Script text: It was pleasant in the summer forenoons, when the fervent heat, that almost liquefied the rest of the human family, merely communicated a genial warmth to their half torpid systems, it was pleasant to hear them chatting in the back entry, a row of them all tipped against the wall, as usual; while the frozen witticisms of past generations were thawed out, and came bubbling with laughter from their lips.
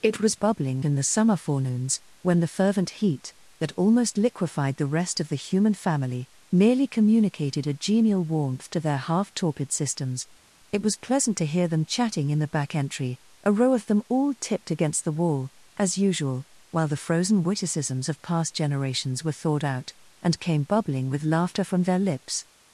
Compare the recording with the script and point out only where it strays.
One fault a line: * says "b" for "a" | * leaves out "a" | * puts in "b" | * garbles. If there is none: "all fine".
* says "bubbling" for "pleasant"